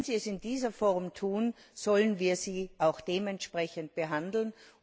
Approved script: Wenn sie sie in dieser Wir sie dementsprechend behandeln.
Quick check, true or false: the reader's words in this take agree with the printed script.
false